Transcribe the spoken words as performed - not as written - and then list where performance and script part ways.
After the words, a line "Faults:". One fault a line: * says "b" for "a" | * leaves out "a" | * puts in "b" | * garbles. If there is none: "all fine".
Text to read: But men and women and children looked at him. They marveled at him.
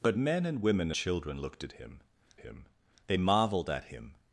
But men and women children looked at him him. They marveled at him.
Faults:
* leaves out "and"
* puts in "him"